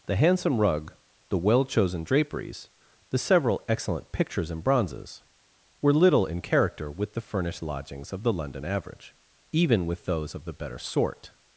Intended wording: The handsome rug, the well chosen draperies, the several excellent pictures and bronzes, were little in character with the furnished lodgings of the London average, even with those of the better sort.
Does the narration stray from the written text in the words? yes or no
no